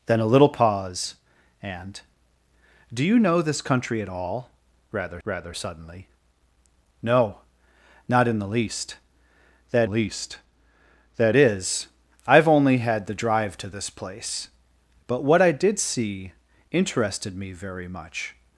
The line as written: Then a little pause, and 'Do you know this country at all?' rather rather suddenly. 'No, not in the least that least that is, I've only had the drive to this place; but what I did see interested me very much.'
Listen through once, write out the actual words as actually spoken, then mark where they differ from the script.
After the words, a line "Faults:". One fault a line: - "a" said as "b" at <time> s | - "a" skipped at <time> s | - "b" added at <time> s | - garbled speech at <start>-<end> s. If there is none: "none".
Then a little pause, and 'Do you know this country at all?' rather rather suddenly. 'No, not in the least that least that is, I've only had the drive to this place; but what I did see interested me very much.'
Faults:
none